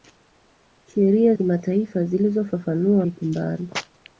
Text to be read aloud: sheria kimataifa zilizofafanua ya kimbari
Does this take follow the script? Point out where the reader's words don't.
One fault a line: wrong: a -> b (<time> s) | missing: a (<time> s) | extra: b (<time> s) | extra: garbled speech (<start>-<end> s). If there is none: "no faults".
no faults